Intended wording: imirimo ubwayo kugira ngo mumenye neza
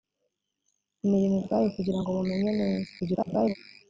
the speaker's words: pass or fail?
fail